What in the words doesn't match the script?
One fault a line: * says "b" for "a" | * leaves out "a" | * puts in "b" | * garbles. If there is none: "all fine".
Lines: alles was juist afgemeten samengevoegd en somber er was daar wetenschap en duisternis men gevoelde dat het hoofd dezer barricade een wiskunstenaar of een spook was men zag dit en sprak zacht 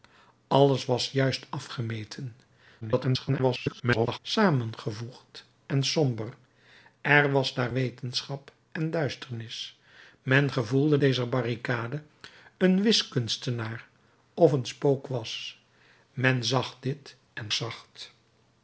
* garbles
* leaves out "dat het hoofd"
* leaves out "sprak"